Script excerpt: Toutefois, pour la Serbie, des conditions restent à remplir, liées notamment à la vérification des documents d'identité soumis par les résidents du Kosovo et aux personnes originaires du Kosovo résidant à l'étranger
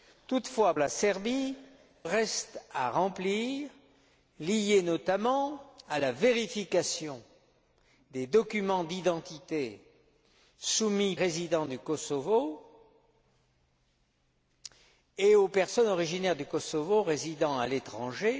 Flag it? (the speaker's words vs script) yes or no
yes